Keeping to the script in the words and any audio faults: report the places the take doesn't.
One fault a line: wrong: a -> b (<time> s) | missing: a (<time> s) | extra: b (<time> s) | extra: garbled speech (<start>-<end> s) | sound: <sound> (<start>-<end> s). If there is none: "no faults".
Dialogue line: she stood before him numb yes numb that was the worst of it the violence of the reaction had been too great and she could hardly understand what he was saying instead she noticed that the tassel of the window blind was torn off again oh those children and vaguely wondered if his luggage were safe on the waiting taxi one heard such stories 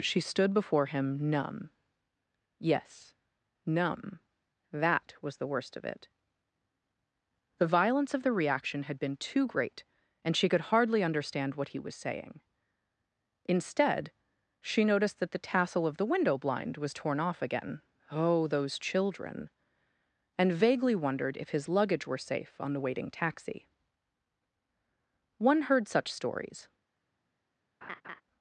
sound: laugh (27.8-28.2 s)